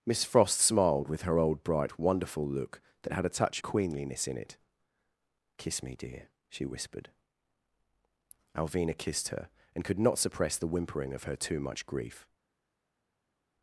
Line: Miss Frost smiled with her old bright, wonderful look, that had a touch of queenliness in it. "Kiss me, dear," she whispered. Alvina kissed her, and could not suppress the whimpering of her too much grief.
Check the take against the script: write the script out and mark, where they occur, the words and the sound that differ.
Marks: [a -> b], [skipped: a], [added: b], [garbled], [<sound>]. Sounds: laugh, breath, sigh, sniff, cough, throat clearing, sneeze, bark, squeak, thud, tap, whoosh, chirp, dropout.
Miss Frost smiled with her old bright, wonderful look, that had a touch [skipped: of] queenliness in it. "Kiss me, dear," she whispered. Alvina kissed her, and could not suppress the whimpering of her too much grief.